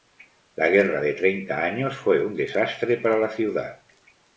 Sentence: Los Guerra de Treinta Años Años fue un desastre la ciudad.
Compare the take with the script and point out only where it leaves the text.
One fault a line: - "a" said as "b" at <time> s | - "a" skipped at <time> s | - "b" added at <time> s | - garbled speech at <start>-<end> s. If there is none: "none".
- "Los" said as "La" at 0.6 s
- "Años" skipped at 1.9 s
- "para" added at 3.0 s